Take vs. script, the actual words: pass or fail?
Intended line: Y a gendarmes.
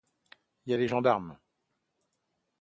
fail